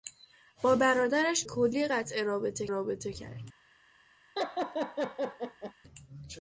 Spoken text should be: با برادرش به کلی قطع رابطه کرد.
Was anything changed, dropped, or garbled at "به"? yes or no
yes